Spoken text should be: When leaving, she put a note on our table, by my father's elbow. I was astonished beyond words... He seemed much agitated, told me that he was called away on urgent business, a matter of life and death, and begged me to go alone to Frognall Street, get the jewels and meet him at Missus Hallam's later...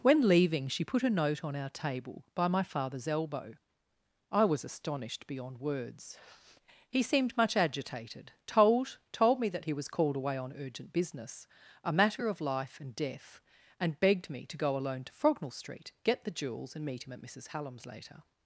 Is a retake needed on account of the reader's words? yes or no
yes